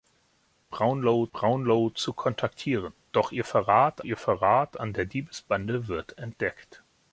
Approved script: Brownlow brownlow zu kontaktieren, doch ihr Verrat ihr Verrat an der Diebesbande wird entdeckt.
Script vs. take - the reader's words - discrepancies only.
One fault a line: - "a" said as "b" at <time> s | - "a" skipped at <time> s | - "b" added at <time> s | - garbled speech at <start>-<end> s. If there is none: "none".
none